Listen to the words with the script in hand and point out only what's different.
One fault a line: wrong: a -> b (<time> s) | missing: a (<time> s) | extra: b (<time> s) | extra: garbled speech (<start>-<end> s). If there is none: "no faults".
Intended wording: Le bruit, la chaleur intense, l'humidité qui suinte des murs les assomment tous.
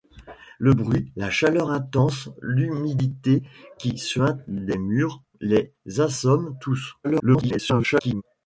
extra: garbled speech (7.0-8.2 s)